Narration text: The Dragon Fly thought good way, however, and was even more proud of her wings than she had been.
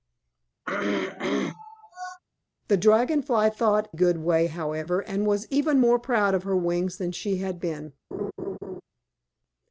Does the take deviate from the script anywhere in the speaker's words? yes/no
no